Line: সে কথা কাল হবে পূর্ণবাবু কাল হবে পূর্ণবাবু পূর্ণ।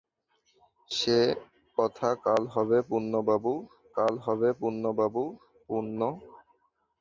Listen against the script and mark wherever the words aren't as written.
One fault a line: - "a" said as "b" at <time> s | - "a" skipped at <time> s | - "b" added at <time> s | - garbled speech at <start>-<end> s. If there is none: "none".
none